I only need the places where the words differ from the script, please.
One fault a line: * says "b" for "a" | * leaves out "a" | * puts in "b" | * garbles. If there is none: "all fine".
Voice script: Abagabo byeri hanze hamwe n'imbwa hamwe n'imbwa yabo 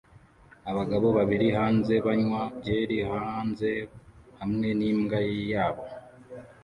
* says "babiri" for "byeri"
* says "banywa byeri hanze" for "hamwe n'imbwa"